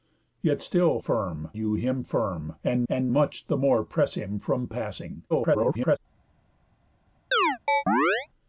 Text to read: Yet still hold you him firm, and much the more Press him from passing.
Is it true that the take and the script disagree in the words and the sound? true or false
true